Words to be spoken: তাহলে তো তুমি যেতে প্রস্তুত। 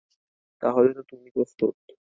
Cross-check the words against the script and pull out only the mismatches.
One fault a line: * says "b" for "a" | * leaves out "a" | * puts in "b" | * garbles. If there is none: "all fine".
* leaves out "যেতে"